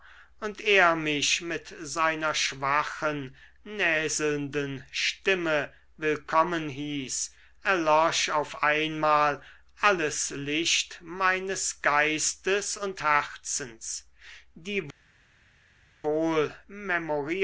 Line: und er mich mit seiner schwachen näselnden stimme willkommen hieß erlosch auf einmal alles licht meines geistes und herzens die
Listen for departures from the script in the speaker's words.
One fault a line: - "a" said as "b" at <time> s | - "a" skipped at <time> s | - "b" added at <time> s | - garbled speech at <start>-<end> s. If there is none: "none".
none